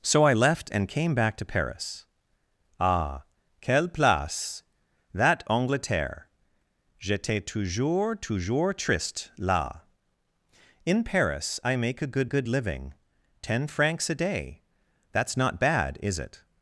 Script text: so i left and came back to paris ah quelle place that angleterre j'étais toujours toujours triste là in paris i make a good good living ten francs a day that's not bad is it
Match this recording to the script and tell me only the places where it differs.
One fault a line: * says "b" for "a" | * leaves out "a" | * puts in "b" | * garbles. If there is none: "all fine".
all fine